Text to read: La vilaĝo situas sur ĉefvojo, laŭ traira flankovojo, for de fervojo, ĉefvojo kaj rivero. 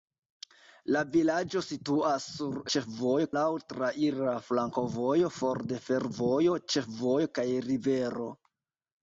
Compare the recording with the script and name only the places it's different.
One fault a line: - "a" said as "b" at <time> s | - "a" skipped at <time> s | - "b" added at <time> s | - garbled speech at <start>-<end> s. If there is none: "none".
none